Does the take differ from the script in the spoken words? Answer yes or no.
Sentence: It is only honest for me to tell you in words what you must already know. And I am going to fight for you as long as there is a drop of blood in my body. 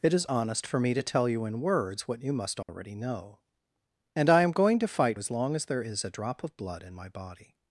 yes